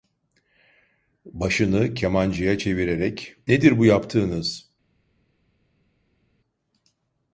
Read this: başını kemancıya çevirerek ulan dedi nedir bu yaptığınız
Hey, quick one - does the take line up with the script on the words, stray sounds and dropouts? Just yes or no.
no